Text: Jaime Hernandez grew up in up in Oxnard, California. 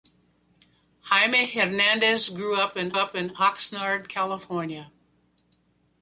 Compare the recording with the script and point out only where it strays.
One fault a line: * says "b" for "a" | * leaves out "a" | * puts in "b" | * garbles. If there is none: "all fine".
all fine